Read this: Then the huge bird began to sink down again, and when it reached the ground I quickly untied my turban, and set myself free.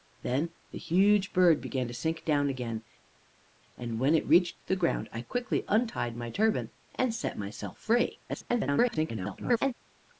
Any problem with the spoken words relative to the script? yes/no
yes